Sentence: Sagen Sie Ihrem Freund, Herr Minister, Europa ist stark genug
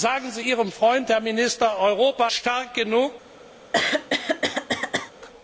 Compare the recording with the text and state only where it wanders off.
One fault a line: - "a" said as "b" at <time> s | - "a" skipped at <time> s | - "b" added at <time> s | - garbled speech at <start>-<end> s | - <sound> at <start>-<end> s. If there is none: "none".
- "ist" skipped at 2.3 s
- throat clearing at 3.7-5.1 s